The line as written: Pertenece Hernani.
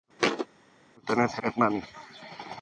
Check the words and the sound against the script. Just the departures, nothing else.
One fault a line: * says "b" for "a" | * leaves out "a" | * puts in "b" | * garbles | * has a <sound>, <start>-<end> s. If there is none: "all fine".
* has a thud, 0.2-0.5 s